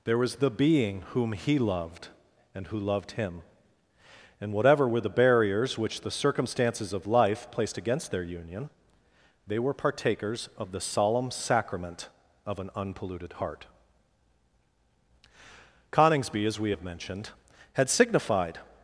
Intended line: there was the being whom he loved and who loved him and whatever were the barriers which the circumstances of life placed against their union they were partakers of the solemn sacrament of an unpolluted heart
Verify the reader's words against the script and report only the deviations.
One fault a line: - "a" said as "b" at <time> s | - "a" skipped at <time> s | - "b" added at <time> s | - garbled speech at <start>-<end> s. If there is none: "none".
- "coningsby as we have mentioned had signified" added at 15.9 s